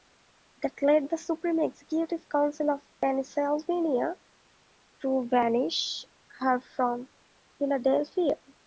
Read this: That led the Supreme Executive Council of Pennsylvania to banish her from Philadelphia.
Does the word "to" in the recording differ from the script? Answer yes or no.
no